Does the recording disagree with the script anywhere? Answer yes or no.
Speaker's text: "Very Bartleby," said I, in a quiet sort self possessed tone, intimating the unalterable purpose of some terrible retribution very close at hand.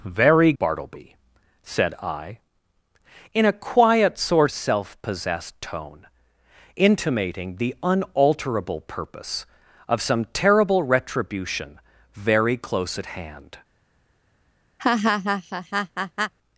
no